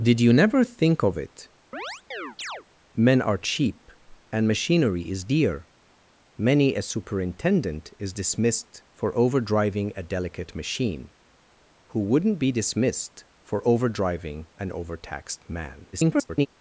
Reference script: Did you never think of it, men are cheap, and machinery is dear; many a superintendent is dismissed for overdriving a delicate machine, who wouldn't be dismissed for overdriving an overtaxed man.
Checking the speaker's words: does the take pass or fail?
fail